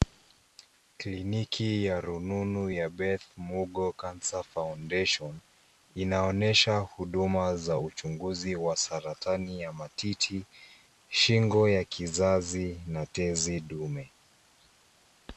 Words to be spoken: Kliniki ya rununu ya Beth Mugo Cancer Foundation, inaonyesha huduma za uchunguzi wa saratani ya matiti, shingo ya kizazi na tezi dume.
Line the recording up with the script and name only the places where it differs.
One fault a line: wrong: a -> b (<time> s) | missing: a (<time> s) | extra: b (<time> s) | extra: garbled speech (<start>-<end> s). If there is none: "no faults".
no faults